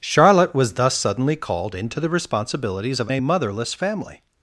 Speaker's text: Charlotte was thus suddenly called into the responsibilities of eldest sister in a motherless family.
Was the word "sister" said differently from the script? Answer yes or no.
yes